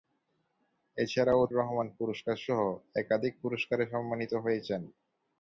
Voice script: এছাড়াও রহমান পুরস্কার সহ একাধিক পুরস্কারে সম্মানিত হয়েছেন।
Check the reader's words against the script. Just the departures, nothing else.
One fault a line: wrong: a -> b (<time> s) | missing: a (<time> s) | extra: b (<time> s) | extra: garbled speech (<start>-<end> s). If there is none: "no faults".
no faults